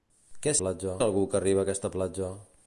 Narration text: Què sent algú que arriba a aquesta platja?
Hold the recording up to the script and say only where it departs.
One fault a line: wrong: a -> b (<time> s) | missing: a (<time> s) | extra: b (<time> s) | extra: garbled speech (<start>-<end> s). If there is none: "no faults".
wrong: sent -> platja (0.6 s)